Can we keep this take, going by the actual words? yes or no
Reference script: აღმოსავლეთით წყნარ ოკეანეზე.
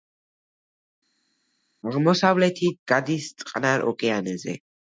no